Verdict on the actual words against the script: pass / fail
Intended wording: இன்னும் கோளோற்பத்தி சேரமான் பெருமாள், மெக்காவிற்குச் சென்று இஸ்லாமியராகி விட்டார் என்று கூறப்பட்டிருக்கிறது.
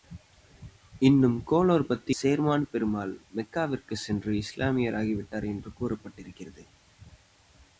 pass